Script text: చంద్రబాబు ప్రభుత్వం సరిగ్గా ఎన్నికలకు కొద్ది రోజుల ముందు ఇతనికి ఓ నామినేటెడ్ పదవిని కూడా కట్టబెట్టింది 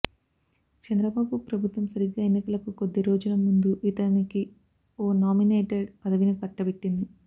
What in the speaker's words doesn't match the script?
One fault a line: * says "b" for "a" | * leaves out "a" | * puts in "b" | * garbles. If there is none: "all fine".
* leaves out "కూడా"